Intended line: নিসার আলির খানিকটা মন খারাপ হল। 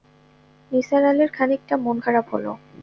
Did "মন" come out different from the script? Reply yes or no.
no